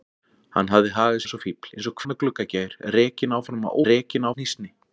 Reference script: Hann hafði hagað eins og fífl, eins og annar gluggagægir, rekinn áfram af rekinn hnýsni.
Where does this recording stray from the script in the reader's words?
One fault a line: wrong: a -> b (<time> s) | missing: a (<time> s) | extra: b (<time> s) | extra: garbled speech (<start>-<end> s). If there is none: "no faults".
no faults